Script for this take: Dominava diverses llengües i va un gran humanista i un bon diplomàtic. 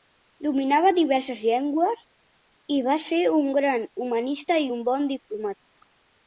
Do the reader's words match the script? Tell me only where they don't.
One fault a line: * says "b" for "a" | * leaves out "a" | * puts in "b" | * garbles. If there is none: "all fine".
* puts in "ser"